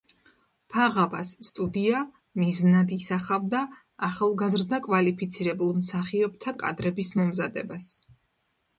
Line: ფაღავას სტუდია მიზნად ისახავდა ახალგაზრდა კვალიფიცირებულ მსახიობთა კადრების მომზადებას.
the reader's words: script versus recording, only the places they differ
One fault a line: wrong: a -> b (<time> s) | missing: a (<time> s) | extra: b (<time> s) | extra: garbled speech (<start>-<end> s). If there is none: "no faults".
no faults